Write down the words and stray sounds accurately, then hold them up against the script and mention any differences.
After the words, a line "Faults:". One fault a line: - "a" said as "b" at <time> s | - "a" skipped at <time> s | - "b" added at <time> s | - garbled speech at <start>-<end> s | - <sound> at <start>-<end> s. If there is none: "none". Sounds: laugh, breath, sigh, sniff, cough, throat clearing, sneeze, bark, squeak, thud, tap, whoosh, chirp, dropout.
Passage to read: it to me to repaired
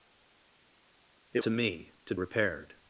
it to me to repaired
Faults:
none